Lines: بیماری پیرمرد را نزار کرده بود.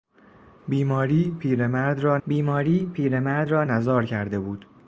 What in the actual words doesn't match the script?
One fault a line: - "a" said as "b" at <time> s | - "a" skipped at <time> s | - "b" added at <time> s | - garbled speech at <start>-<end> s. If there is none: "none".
- "بیماری پیرمرد را" added at 2.3 s